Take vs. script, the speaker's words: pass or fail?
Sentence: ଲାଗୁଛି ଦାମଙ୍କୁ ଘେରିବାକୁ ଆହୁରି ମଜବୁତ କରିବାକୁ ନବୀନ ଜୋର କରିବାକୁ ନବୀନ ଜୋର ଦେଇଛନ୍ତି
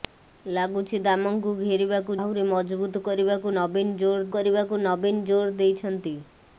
pass